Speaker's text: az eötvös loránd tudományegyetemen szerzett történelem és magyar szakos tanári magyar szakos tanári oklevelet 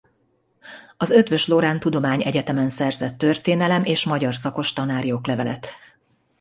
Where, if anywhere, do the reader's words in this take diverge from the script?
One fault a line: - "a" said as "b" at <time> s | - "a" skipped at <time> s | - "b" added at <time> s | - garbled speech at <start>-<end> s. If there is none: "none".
- "magyar szakos tanári" skipped at 5.1 s